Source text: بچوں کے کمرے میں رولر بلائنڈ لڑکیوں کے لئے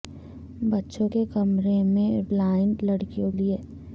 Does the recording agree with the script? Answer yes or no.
no